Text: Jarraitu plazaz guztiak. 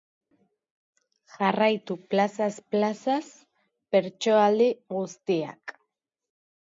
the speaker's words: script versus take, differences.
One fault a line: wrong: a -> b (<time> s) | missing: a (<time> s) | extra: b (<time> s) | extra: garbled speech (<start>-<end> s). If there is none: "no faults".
extra: plazaz bertsoaldi (2.8 s)